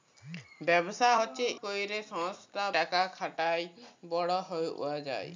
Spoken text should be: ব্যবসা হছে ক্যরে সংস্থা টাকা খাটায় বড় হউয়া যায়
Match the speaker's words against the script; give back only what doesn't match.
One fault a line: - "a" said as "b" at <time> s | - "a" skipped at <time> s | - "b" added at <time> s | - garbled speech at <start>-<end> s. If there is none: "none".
none